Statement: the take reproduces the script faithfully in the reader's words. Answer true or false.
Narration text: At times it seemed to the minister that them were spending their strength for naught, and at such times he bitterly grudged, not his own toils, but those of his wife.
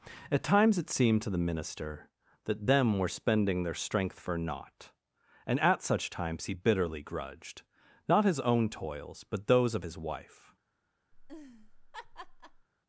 true